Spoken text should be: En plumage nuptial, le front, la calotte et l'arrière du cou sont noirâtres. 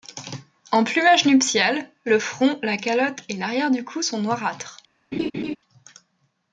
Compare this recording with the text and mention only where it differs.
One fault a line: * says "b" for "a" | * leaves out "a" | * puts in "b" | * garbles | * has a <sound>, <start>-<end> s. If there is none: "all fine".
* has a laugh, 5.1-5.6 s